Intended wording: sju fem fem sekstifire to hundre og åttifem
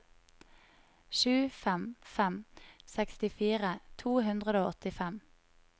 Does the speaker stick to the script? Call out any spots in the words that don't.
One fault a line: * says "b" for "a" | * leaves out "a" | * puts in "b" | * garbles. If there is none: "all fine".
all fine